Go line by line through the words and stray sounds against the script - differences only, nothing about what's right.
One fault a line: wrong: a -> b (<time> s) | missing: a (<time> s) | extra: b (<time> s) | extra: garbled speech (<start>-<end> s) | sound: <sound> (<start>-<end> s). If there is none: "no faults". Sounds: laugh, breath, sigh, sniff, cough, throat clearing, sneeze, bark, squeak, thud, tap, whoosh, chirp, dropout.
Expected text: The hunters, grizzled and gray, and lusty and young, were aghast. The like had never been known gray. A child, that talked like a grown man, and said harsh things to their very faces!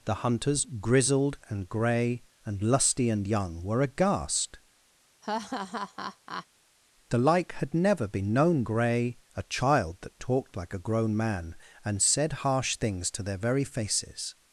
sound: laugh (5.2-6.5 s)